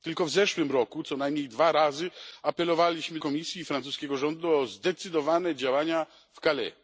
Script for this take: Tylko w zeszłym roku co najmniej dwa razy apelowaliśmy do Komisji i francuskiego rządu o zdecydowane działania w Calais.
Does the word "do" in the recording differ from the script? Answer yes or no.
yes